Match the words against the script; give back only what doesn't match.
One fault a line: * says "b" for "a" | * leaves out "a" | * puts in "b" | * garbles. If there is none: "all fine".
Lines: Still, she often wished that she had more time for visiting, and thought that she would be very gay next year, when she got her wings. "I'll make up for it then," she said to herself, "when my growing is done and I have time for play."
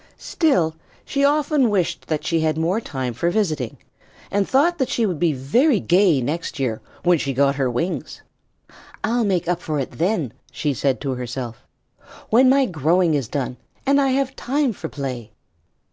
all fine